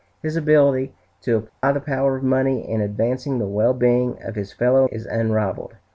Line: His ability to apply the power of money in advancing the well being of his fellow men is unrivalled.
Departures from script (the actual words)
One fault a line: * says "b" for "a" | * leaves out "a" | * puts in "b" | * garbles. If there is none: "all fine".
* leaves out "men"